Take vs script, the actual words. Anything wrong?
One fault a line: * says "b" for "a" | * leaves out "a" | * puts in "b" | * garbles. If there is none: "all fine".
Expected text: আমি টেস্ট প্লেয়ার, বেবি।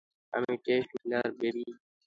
all fine